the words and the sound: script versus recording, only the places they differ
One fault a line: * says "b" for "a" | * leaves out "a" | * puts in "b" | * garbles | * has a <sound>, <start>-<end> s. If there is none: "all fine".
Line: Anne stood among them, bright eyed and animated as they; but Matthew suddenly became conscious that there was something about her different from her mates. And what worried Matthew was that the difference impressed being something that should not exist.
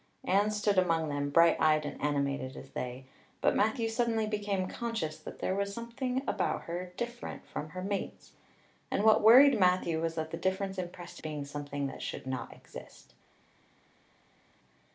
all fine